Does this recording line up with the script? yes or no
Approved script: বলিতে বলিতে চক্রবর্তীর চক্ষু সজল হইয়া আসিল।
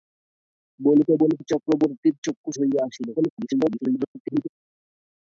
no